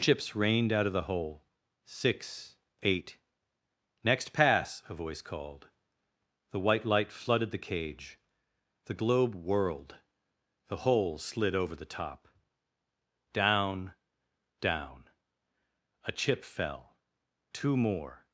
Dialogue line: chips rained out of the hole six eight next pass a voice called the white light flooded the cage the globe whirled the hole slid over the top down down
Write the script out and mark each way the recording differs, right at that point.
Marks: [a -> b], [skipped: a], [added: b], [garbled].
chips rained out of the hole six eight next pass a voice called the white light flooded the cage the globe whirled the hole slid over the top down down [added: a chip fell two more]